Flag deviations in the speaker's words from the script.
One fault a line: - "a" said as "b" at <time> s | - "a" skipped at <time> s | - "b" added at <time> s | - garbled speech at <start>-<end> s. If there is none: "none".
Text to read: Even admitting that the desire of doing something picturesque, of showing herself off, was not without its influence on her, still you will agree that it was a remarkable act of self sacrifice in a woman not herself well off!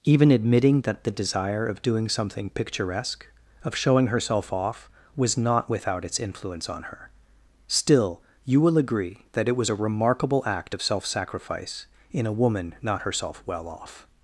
none